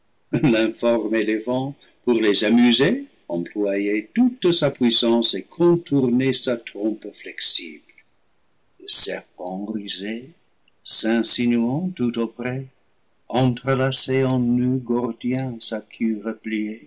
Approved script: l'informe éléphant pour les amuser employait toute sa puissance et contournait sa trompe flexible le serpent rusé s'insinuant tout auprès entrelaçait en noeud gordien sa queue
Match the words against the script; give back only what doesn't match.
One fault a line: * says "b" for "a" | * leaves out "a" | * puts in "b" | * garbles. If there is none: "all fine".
all fine